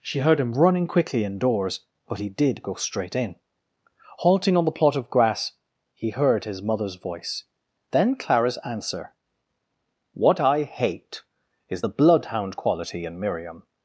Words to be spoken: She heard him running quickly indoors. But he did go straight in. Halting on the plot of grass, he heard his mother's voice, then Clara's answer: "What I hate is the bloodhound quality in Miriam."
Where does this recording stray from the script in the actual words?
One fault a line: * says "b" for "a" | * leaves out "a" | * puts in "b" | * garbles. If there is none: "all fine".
all fine